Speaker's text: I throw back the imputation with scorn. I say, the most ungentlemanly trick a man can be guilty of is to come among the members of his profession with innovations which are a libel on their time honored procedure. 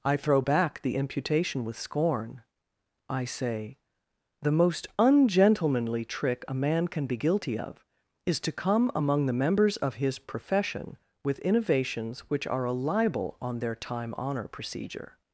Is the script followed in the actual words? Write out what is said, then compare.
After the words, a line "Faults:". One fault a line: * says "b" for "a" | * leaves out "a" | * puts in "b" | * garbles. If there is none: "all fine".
I throw back the imputation with scorn. I say, the most ungentlemanly trick a man can be guilty of is to come among the members of his profession with innovations which are a libel on their time honor procedure.
Faults:
* says "honor" for "honored"